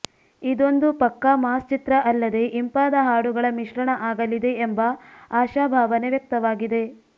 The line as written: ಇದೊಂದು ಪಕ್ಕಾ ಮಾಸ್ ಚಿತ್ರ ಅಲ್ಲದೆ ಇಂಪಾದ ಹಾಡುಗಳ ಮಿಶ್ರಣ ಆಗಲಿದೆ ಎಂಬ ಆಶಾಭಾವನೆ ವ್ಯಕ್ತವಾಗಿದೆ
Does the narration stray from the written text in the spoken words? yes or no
no